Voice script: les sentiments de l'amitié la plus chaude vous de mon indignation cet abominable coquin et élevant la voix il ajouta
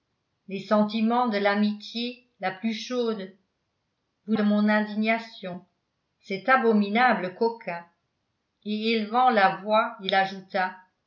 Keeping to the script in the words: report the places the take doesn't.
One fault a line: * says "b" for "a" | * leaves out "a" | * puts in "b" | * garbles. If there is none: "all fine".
all fine